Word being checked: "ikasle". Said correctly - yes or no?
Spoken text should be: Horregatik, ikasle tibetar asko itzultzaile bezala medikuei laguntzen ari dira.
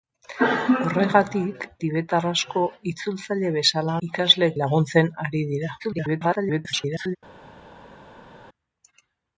no